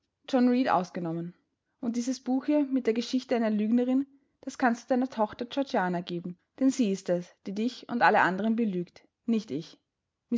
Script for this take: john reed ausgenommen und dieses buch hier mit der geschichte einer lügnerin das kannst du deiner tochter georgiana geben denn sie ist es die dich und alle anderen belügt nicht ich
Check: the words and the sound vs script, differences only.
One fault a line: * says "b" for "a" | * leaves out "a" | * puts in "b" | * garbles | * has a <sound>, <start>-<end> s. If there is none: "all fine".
all fine